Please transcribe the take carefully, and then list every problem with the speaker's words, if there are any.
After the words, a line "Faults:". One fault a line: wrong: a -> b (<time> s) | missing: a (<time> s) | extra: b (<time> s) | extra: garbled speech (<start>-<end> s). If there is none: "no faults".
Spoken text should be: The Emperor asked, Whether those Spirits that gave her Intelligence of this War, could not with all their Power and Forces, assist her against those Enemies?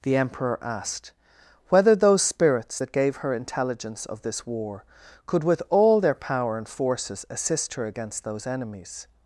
The Emperor asked, Whether those Spirits that gave her Intelligence of this War, could with all their Power and Forces, assist her against those Enemies?
Faults:
missing: not (5.4 s)